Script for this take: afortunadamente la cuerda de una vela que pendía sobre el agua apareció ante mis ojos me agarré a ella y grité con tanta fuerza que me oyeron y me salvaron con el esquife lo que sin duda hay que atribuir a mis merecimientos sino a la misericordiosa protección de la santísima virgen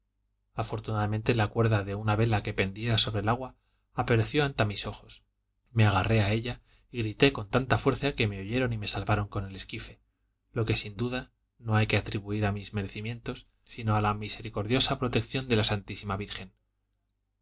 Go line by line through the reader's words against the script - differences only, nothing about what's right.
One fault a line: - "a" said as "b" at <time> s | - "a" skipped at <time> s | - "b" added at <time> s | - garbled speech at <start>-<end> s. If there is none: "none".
- "no" added at 11.6 s